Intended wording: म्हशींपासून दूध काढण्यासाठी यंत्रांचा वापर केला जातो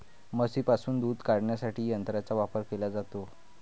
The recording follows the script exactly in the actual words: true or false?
true